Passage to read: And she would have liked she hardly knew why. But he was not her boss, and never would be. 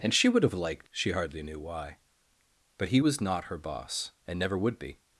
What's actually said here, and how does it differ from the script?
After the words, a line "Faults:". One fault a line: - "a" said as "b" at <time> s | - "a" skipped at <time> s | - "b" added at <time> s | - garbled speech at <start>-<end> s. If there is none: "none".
And she would have liked she hardly knew why. But he was not her boss, and never would be.
Faults:
none